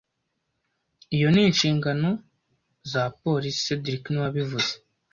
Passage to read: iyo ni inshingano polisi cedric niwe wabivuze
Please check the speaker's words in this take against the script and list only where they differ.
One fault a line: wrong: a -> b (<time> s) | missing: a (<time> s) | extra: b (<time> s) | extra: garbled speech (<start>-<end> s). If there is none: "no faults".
extra: za (2.9 s)